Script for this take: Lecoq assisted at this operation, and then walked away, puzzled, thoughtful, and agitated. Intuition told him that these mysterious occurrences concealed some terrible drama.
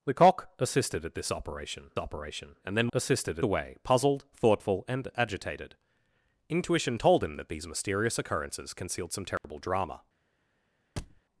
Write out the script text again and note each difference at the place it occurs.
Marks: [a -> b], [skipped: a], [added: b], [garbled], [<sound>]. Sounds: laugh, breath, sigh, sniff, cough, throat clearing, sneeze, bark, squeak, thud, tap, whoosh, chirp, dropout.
Lecoq assisted at this operation, [added: operation] and then [walked -> assisted] away, puzzled, thoughtful, and agitated. Intuition told him that these mysterious occurrences concealed some terrible [dropout] drama. [thud]